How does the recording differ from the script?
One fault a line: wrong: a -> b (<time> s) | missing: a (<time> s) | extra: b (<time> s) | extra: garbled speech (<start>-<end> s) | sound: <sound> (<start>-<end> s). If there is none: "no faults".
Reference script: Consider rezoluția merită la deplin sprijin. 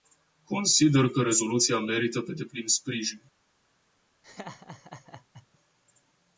extra: că (1.1 s)
wrong: la -> pe (2.2 s)
sound: laugh (4.2-5.5 s)